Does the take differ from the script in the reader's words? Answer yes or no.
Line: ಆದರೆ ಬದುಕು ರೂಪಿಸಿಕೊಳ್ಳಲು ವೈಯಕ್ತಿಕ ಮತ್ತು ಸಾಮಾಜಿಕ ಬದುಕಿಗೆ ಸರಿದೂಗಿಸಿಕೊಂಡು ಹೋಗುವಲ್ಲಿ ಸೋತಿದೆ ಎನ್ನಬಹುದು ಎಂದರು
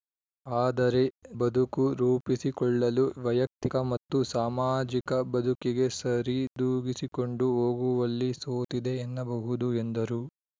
no